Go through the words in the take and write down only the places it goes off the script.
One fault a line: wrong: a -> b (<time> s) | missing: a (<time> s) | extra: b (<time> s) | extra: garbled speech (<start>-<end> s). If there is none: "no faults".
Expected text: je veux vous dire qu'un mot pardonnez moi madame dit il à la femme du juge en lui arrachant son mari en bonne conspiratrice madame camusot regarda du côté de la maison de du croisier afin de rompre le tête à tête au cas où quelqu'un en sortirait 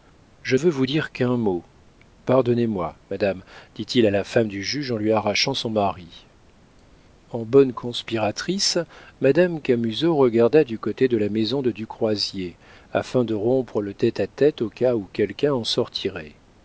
no faults